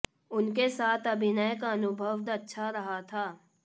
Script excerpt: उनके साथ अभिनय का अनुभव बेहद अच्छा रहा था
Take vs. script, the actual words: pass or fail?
fail